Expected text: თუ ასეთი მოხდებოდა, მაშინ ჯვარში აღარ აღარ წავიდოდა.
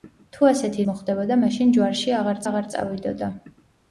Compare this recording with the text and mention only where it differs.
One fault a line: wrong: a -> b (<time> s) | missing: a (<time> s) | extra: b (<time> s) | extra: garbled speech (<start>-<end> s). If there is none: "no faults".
no faults